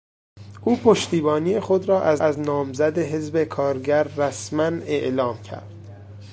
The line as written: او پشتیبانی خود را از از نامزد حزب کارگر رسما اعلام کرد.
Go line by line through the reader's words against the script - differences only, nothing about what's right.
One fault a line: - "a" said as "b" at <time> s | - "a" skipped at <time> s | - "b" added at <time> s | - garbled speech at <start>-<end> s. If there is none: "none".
none